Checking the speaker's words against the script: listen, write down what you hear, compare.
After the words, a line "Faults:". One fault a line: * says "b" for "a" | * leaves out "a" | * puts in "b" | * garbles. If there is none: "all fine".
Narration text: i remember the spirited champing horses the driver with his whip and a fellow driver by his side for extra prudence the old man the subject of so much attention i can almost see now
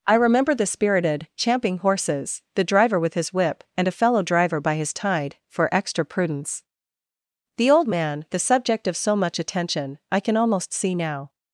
i remember the spirited champing horses the driver with his whip and a fellow driver by his tide for extra prudence the old man the subject of so much attention i can almost see now
Faults:
* says "tide" for "side"